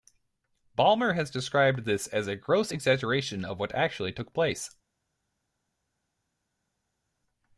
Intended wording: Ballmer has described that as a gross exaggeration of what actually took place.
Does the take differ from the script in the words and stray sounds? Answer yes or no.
yes